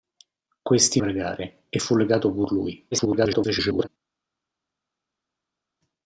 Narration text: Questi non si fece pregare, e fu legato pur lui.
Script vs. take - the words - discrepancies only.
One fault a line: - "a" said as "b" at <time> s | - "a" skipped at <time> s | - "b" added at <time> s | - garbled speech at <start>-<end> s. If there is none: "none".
- "non si fece" skipped at 1.0 s
- garbled speech at 2.9-3.9 s